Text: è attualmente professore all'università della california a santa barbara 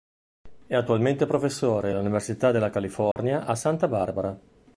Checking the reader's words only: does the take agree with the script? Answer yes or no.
yes